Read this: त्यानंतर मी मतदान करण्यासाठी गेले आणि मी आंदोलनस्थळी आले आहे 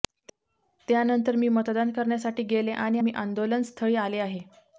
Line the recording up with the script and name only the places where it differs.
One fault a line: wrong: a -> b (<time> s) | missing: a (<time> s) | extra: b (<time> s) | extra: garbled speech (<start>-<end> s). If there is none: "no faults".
no faults